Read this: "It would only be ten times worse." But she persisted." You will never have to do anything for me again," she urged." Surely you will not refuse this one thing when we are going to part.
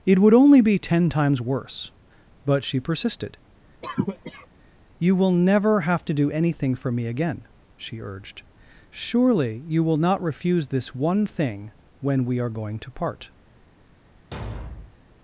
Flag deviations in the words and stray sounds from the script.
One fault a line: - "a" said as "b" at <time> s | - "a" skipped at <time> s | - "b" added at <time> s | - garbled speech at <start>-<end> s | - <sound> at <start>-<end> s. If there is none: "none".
- cough at 3.8-4.5 s
- thud at 14.3-15.0 s